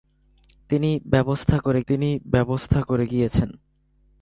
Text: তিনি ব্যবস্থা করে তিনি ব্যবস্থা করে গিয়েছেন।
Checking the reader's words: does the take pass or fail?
pass